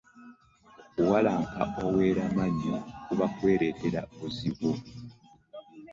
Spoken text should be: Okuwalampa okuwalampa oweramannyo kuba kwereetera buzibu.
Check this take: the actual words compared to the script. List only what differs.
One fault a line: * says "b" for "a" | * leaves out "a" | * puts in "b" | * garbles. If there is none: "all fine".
* leaves out "okuwalampa"